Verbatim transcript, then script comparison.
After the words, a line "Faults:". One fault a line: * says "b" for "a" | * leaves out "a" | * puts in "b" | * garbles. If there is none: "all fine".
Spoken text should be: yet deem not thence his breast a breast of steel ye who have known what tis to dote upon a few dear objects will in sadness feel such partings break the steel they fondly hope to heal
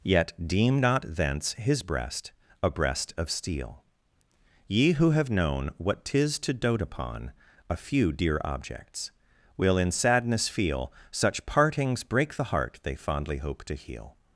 yet deem not thence his breast a breast of steel ye who have known what tis to dote upon a few dear objects will in sadness feel such partings break the heart they fondly hope to heal
Faults:
* says "heart" for "steel"